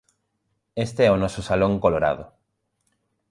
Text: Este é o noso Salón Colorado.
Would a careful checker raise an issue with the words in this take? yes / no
no